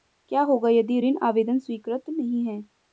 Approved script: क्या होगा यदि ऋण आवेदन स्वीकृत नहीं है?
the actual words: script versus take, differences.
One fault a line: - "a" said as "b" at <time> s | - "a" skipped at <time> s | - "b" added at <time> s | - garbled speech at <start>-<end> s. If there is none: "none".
none